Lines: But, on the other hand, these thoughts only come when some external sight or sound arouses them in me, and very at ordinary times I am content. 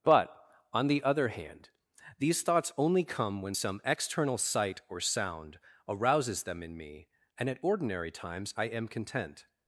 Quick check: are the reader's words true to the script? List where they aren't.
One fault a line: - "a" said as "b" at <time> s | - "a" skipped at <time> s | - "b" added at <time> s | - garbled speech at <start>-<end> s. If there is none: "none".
- "very" skipped at 7.5 s